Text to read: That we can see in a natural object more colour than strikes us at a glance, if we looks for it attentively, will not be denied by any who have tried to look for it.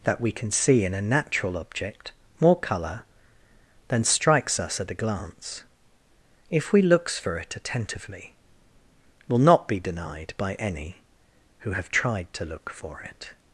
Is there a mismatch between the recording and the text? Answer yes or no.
no